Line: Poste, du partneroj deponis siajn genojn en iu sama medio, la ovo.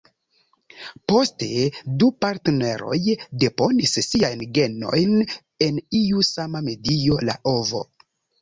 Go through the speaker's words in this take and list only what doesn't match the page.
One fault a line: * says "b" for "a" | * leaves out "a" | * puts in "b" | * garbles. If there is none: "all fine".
all fine